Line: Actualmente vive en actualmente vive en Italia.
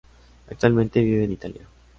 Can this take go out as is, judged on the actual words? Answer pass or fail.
fail